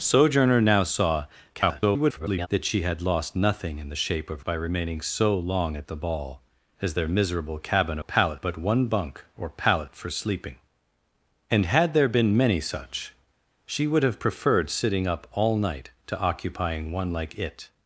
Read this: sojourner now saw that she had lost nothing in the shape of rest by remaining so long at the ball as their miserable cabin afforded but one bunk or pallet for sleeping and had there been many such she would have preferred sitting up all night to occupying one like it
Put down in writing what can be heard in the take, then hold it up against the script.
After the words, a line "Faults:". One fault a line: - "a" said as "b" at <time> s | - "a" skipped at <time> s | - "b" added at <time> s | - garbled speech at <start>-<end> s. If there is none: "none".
sojourner now saw [garbled] that she had lost nothing in the shape of by remaining so long at the ball as their miserable cabin pallet but one bunk or pallet for sleeping and had there been many such she would have preferred sitting up all night to occupying one like it
Faults:
- garbled speech at 1.5-2.5 s
- "rest" skipped at 4.4 s
- "afforded" said as "pallet" at 8.0 s